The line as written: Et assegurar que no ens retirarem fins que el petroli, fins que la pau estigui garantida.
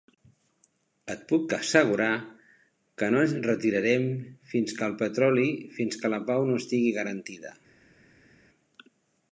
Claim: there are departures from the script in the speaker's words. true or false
true